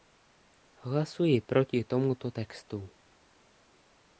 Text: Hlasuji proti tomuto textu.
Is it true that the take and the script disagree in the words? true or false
false